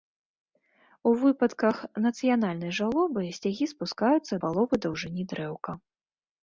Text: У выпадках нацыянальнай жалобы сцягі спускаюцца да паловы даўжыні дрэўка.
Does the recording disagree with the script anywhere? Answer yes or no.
yes